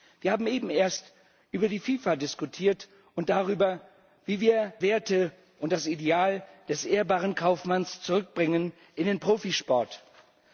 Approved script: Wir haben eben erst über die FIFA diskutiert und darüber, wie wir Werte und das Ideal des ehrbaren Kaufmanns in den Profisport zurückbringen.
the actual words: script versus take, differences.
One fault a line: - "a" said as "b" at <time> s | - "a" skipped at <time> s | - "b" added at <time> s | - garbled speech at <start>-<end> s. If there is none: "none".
none